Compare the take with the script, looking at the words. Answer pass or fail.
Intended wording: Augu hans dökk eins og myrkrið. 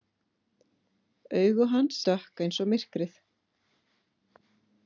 pass